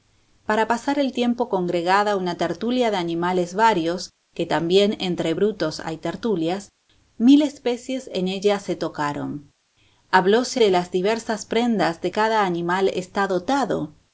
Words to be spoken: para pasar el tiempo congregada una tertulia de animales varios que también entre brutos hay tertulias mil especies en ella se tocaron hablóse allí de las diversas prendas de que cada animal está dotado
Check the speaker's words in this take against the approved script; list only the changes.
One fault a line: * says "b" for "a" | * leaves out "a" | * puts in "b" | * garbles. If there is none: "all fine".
* leaves out "allí"
* leaves out "que"